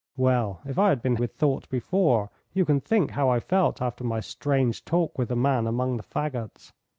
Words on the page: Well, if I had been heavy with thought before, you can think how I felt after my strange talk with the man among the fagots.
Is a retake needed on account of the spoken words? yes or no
yes